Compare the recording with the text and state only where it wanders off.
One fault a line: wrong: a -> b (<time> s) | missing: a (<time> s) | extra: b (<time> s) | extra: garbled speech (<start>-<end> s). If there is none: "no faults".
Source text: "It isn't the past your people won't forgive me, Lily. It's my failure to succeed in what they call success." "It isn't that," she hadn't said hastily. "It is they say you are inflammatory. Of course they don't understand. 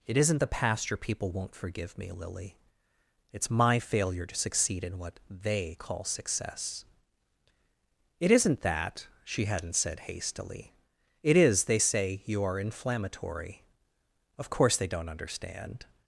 no faults